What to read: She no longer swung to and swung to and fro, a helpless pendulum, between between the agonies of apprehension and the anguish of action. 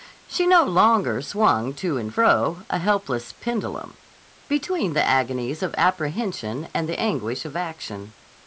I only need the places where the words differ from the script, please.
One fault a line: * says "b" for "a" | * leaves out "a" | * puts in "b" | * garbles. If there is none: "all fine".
* leaves out "swung to and"
* leaves out "between"